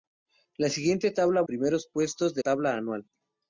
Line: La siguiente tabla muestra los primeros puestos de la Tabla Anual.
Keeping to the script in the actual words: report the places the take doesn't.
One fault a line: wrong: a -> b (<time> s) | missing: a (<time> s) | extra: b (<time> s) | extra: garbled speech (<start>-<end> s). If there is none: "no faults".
missing: muestra los (1.4 s)
missing: la (2.4 s)